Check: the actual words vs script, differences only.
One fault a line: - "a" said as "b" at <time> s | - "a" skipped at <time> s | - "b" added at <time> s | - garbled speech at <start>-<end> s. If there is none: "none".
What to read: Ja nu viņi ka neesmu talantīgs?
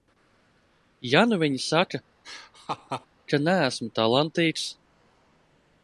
- "saka" added at 1.6 s